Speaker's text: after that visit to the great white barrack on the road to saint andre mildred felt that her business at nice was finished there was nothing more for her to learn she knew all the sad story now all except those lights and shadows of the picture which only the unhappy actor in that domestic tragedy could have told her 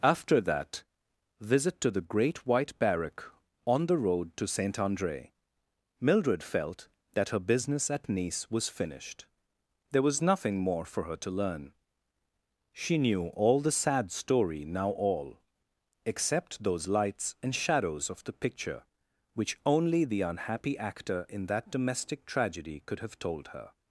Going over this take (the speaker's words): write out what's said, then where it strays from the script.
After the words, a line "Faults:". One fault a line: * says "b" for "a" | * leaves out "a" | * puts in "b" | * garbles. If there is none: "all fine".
after that visit to the great white barrack on the road to saint andre mildred felt that her business at nice was finished there was nothing more for her to learn she knew all the sad story now all except those lights and shadows of the picture which only the unhappy actor in that domestic tragedy could have told her
Faults:
all fine